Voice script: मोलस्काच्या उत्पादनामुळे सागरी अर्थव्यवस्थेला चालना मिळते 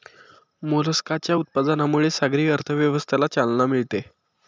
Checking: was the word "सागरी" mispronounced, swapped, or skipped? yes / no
no